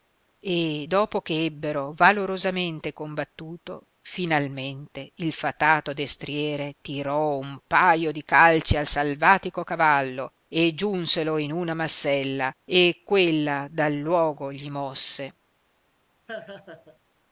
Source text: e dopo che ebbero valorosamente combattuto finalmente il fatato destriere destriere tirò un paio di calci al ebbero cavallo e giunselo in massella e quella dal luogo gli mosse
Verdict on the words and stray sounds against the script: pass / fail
fail